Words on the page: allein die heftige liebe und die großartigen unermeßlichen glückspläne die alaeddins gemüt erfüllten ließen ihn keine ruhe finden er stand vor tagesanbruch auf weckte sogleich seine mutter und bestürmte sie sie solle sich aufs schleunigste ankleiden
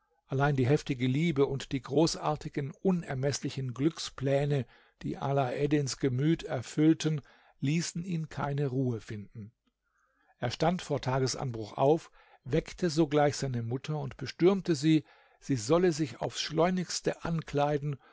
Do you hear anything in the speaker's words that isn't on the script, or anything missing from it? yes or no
no